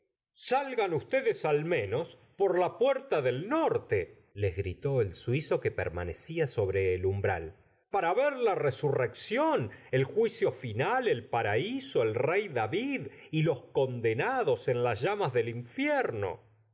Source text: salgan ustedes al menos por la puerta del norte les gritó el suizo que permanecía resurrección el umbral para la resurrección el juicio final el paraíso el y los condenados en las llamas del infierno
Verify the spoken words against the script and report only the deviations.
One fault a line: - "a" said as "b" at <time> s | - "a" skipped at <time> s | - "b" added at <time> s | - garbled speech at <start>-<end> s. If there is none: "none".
- "resurrección" said as "sobre" at 6.5 s
- "ver" added at 8.1 s
- "rey david" added at 12.1 s